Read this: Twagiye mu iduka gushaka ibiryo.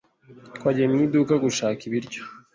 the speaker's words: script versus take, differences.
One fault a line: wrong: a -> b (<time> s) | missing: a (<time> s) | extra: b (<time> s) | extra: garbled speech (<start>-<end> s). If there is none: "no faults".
no faults